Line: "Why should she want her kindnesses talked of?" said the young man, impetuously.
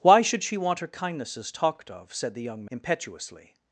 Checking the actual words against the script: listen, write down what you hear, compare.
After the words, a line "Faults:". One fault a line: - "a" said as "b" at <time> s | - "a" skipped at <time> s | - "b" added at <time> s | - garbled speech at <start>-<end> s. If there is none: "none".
"Why should she want her kindnesses talked of?" said the young impetuously.
Faults:
- "man" skipped at 2.6 s